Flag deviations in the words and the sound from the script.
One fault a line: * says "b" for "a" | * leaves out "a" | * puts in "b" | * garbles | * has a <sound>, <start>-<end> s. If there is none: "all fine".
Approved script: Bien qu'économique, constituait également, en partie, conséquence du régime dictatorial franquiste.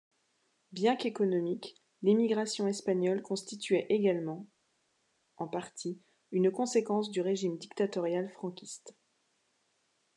* puts in "l'émigration espagnole"
* puts in "une"